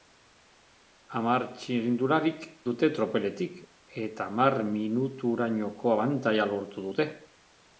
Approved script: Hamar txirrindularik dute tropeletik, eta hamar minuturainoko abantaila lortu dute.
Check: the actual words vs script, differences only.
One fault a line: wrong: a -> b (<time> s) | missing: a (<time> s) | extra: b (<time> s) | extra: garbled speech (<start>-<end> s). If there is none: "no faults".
no faults